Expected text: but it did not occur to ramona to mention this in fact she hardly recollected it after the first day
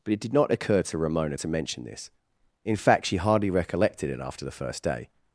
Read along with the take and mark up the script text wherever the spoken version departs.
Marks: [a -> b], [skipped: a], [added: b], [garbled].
but it did not occur to ramona to mention this in fact she hardly recollected it after the first day